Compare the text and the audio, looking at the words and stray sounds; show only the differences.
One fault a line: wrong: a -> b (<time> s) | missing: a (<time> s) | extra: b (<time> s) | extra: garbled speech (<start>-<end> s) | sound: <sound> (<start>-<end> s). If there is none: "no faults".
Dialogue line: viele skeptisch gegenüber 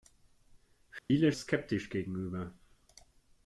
sound: dropout (1.0-1.1 s)